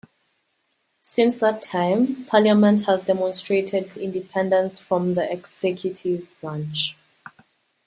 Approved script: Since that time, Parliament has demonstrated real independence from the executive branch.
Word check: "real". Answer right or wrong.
wrong